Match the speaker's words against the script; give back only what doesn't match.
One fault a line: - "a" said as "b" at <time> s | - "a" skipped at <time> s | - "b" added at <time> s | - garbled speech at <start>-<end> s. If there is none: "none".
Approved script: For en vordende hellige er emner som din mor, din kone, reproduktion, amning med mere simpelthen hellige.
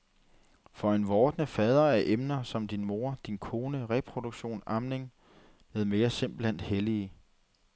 - "hellige" said as "fader" at 1.5 s